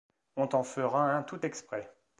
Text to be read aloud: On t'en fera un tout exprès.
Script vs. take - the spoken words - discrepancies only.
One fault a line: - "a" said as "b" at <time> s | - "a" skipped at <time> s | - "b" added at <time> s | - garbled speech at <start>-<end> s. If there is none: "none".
none